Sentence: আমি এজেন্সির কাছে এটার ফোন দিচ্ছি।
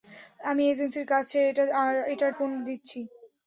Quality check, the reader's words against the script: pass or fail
pass